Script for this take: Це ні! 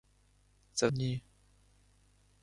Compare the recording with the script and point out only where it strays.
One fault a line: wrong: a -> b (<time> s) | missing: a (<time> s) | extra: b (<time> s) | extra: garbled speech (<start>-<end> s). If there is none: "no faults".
no faults